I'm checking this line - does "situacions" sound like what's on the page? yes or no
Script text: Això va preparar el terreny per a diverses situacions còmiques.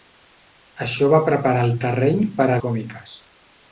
no